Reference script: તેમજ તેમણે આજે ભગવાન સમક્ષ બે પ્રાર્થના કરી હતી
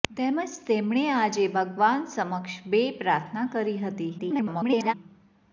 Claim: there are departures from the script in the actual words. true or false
true